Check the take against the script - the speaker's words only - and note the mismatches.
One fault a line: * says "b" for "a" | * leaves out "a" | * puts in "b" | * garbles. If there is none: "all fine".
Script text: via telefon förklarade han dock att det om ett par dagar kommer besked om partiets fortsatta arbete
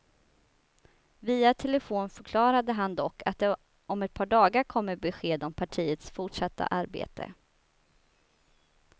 all fine